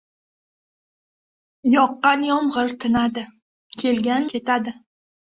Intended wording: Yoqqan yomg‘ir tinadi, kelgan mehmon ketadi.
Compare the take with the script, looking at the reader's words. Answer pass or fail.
fail